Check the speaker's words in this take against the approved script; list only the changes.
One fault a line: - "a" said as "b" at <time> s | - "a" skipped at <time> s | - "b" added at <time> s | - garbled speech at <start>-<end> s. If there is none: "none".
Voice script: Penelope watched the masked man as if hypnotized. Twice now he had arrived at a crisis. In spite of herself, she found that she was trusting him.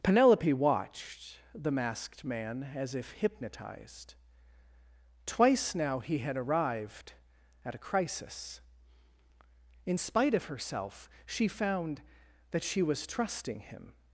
none